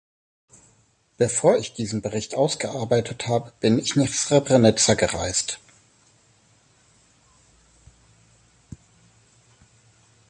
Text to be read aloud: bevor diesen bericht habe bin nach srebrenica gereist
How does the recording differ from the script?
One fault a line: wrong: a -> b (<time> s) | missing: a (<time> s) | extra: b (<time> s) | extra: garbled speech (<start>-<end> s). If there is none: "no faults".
extra: ich (1.6 s)
extra: ausgearbeitet (2.3 s)
extra: ich (3.8 s)